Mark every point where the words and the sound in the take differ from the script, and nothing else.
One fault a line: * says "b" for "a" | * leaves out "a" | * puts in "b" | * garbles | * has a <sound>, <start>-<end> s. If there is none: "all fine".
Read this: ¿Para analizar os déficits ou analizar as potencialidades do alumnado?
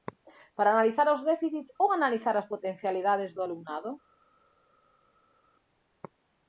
all fine